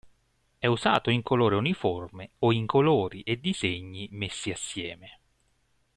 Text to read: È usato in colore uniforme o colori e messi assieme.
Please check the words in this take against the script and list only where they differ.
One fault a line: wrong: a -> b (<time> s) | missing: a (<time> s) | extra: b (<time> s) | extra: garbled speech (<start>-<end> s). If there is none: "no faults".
extra: in (2.5 s)
extra: disegni (3.4 s)